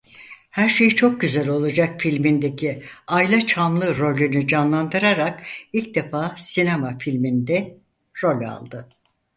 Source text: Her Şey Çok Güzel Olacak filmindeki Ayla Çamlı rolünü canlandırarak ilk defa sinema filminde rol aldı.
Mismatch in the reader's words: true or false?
false